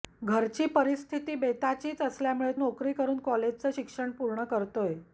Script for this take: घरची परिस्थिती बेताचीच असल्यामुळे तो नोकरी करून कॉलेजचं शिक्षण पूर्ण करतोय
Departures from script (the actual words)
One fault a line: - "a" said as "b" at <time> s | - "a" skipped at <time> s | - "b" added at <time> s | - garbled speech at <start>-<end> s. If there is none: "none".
- "तो" skipped at 2.5 s